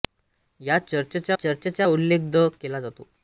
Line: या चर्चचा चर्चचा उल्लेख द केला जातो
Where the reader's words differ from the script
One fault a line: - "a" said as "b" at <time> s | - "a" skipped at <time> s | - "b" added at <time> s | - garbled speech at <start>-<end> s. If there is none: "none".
none